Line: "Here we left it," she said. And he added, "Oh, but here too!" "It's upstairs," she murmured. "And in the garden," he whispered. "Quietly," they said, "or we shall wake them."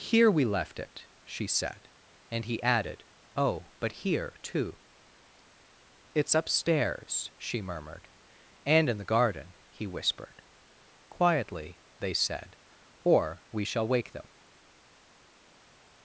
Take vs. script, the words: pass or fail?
pass